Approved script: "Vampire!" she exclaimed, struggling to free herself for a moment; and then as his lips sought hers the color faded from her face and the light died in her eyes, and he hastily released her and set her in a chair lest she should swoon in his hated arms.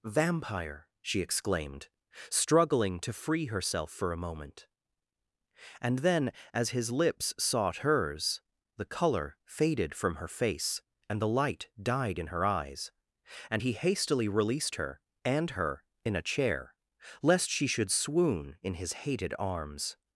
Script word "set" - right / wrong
wrong